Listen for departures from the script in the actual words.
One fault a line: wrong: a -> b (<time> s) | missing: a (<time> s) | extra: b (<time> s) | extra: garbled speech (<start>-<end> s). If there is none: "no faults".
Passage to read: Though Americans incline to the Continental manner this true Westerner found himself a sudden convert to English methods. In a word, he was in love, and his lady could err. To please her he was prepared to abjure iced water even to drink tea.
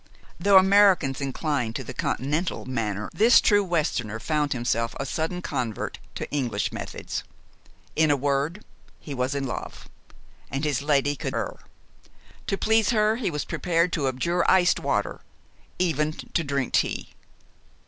no faults